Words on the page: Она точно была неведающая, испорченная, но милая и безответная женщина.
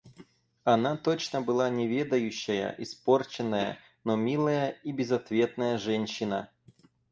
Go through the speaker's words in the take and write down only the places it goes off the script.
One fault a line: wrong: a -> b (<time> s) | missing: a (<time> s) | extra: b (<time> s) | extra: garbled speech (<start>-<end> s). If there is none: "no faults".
no faults